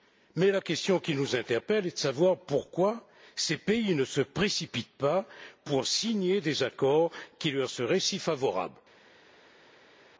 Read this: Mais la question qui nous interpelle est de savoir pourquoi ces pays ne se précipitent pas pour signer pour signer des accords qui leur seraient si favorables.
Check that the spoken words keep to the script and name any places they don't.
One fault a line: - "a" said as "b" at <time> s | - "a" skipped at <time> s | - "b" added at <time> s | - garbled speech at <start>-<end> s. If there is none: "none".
- "pour signer" skipped at 6.4 s